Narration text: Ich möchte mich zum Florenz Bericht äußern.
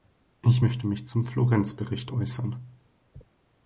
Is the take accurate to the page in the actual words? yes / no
yes